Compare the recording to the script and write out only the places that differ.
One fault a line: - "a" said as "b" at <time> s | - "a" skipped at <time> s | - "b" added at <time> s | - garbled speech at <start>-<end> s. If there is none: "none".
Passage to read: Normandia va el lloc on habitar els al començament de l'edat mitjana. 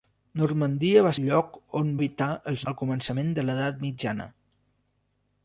none